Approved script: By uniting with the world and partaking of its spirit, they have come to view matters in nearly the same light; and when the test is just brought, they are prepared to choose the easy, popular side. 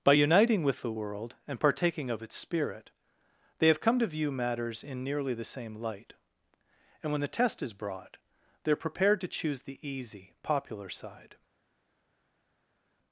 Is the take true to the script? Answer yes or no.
no